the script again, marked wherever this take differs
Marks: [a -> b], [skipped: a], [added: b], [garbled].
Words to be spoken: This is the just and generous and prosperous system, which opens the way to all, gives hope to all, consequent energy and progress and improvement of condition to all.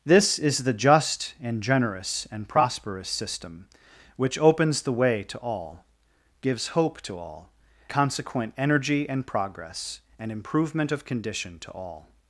This is the just and generous and prosperous system, which opens the way to all, gives hope to all, consequent energy and progress and improvement of condition to all.